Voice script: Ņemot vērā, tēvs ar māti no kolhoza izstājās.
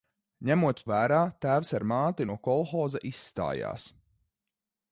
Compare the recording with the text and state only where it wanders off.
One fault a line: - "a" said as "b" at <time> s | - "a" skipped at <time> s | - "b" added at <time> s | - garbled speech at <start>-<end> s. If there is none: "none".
none